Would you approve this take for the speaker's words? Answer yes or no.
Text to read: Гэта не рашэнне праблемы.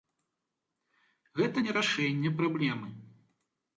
yes